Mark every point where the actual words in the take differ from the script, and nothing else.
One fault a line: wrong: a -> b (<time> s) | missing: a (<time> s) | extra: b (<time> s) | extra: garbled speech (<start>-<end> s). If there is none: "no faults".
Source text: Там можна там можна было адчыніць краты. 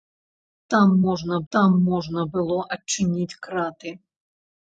no faults